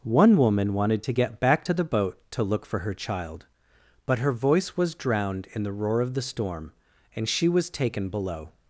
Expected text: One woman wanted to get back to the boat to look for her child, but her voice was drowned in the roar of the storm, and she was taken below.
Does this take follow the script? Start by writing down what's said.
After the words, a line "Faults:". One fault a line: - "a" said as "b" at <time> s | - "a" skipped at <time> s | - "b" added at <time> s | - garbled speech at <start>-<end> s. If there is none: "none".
One woman wanted to get back to the boat to look for her child, but her voice was drowned in the roar of the storm, and she was taken below.
Faults:
none